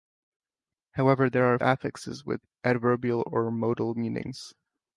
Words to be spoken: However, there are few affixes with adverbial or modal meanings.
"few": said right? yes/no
no